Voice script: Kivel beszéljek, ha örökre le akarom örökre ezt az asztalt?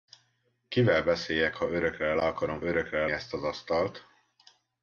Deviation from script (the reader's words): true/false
false